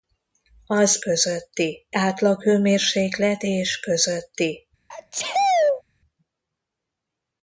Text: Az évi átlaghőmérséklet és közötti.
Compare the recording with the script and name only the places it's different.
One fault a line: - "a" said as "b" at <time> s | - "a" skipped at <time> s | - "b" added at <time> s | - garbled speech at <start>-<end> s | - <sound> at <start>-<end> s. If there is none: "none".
- "évi" said as "közötti" at 1.0 s
- sneeze at 4.9-5.8 s